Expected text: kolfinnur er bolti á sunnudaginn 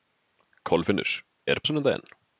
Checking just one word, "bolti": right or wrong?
wrong